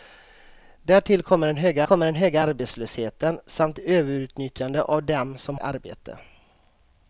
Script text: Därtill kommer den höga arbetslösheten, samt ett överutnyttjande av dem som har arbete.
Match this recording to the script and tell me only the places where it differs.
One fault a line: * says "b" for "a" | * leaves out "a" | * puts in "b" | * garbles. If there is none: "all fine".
* puts in "kommer den höga"
* leaves out "ett"
* leaves out "har"